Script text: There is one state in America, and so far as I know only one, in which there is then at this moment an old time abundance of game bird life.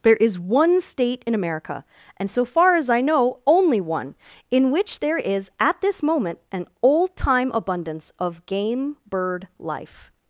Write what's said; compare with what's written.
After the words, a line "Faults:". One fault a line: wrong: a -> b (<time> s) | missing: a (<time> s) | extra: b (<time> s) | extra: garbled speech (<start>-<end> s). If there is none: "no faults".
There is one state in America, and so far as I know only one, in which there is at this moment an old time abundance of game bird life.
Faults:
missing: then (5.5 s)